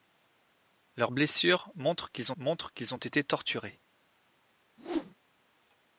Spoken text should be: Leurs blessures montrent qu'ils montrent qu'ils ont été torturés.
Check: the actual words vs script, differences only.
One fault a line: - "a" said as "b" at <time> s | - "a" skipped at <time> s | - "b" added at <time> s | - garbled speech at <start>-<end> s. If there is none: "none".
none